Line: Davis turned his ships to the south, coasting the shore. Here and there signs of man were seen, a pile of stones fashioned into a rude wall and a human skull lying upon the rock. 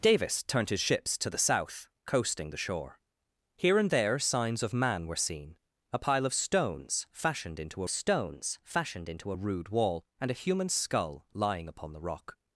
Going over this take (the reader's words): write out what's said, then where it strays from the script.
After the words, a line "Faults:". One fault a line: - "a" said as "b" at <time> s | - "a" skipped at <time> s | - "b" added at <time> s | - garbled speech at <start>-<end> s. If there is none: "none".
Davis turned his ships to the south, coasting the shore. Here and there signs of man were seen, a pile of stones fashioned into stones fashioned into a rude wall and a human skull lying upon the rock.
Faults:
- "stones fashioned into" added at 7.9 s